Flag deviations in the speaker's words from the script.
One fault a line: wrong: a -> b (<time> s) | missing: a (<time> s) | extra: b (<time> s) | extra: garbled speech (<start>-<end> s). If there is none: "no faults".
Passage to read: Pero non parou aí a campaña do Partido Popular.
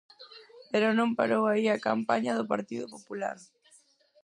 no faults